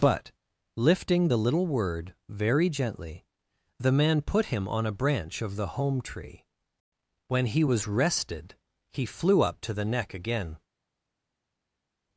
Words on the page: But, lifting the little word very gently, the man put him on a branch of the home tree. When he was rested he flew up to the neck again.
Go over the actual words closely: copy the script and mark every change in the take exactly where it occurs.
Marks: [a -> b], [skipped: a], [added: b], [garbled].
But, lifting the little word very gently, the man put him on a branch of the home tree. When he was rested he flew up to the neck again.